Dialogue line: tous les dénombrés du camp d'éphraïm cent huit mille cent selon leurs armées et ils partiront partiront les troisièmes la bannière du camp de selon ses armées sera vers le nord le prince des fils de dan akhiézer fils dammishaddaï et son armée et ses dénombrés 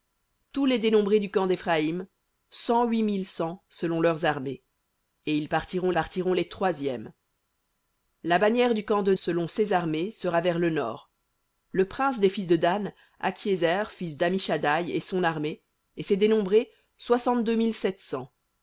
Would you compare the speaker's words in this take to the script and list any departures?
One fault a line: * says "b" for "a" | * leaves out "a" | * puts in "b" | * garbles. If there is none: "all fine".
all fine